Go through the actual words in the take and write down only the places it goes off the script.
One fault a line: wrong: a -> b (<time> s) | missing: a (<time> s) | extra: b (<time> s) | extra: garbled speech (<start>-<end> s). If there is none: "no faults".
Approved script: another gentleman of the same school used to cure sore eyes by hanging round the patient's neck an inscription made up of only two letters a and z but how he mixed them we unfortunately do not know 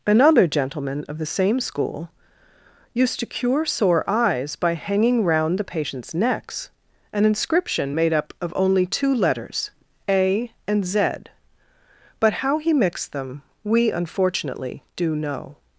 wrong: neck -> necks (6.1 s)
missing: not (15.2 s)